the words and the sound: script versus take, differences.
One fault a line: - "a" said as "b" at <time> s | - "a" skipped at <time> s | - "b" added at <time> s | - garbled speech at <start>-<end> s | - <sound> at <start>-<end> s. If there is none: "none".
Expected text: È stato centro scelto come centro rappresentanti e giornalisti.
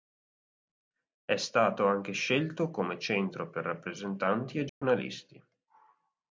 - "centro" said as "anche" at 1.9 s
- "per" added at 3.5 s
- dropout at 4.7-4.8 s